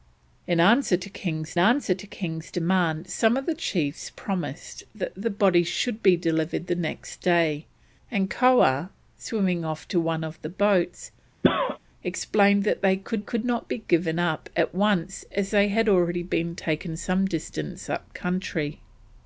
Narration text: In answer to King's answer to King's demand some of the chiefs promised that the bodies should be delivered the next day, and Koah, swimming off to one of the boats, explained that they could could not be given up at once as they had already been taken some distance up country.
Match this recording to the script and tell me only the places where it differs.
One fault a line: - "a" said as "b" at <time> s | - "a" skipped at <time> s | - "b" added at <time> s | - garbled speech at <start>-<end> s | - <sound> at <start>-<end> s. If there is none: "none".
- cough at 11.4-11.8 s